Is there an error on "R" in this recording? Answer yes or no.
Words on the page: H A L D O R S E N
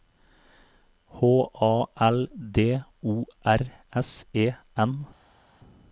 no